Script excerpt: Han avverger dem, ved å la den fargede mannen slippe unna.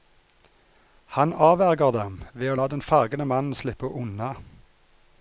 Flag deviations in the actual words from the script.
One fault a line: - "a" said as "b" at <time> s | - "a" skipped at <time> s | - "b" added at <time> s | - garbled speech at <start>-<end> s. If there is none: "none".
none